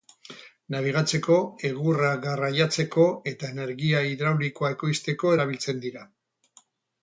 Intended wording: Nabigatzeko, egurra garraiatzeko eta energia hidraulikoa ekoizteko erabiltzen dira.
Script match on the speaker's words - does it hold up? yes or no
yes